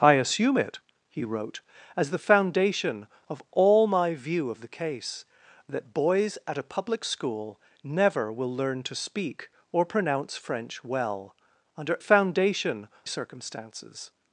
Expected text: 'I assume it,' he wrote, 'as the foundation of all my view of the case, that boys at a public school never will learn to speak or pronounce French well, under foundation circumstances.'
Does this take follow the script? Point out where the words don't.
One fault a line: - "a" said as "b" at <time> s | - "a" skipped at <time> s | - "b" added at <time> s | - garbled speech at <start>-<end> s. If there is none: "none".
none